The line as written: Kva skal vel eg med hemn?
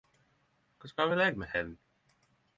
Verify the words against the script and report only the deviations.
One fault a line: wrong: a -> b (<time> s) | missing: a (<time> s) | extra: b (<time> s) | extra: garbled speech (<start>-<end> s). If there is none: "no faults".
no faults